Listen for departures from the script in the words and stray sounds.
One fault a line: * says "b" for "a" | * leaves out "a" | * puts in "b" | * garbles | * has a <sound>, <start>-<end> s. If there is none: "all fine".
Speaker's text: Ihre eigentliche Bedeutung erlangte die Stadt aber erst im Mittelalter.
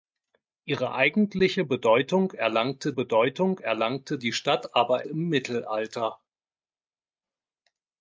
* puts in "Bedeutung erlangte"
* leaves out "erst"